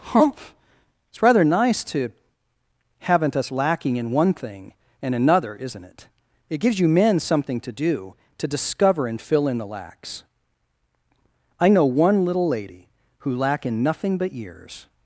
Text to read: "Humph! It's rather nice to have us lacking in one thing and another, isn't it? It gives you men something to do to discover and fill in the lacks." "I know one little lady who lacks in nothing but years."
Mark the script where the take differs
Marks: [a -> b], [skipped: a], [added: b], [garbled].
"Humph! It's rather nice to [have -> haven't] us lacking in one thing and another, isn't it? It gives you men something to do to discover and fill in the lacks." "I know one little lady who [lacks -> lack] in nothing but years."